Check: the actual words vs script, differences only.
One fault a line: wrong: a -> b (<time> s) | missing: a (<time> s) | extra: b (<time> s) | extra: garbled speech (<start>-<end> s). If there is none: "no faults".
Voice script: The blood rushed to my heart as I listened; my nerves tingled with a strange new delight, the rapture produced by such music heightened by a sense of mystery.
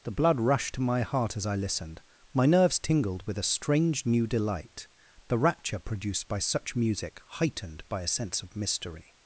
no faults